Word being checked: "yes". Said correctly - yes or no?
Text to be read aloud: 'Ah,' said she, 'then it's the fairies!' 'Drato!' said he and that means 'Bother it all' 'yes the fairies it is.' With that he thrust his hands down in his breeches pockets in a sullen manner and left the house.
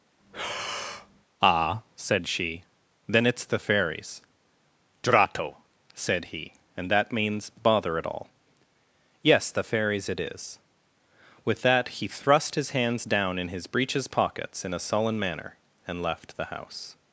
yes